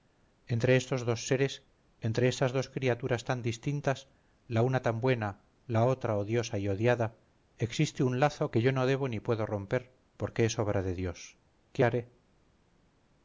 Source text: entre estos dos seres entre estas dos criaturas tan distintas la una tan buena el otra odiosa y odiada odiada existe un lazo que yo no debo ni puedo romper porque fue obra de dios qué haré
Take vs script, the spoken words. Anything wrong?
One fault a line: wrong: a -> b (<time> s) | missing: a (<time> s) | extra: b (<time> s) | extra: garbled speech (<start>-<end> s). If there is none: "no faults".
wrong: el -> la (5.7 s)
missing: odiada (7.2 s)
wrong: fue -> es (10.5 s)